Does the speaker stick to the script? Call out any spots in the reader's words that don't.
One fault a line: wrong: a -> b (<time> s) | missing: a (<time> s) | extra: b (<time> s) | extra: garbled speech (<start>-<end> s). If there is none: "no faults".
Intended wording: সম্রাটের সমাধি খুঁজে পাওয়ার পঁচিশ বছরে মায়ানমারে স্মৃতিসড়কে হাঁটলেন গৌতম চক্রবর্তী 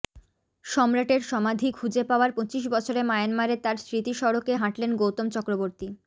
extra: তাঁর (3.6 s)